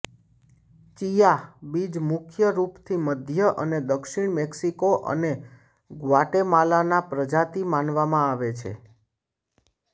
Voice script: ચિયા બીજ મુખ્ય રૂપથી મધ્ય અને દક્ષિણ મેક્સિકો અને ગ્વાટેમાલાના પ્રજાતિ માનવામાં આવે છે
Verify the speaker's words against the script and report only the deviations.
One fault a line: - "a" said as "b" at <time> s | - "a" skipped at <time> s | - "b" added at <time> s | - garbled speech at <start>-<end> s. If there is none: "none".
none